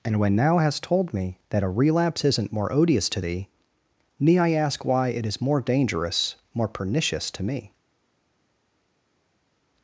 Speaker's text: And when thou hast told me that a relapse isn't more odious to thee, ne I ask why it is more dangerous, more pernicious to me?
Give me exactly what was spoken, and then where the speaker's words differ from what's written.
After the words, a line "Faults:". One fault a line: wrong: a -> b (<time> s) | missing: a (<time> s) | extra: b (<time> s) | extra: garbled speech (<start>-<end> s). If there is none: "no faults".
And when thou hast told me that a relapse isn't more odious to thee, ne I ask why it is more dangerous, more pernicious to me?
Faults:
no faults